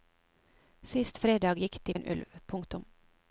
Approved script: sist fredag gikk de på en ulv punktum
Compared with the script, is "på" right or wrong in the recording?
wrong